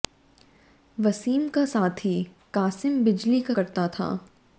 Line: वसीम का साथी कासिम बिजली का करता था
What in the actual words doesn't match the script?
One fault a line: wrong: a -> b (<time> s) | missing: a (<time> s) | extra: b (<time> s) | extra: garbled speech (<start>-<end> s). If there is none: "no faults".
no faults